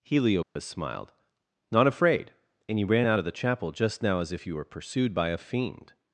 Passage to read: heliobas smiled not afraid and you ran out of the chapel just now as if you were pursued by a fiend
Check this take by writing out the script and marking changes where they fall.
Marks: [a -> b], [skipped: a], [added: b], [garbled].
heliobas smiled not afraid and you ran out of the chapel just now as if you were pursued by a fiend